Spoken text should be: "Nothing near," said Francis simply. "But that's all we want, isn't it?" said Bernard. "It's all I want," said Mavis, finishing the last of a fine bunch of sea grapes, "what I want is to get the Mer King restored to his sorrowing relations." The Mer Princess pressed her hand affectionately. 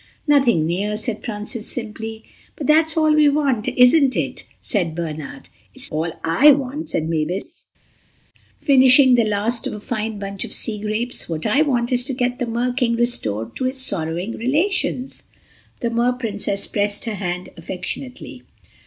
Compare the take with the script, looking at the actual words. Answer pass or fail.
pass